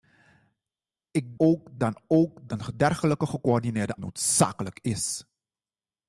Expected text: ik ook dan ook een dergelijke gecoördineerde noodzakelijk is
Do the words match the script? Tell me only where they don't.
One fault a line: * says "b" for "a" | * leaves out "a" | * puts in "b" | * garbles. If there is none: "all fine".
all fine